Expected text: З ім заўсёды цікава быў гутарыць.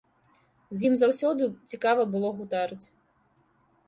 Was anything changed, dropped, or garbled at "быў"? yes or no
yes